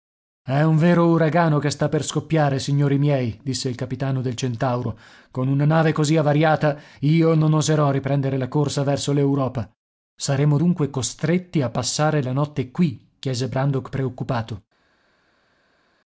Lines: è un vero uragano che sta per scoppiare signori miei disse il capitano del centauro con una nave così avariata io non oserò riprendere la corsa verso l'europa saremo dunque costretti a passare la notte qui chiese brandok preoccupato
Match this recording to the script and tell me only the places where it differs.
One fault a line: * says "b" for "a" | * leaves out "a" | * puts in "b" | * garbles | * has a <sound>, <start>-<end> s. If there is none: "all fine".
all fine